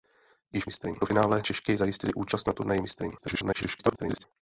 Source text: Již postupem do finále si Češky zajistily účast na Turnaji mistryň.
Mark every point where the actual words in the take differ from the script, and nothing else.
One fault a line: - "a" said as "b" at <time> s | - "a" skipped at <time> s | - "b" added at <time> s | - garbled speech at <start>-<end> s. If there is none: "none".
- "postupem" said as "mistryň" at 0.6 s
- "si" skipped at 1.4 s
- garbled speech at 3.2-4.2 s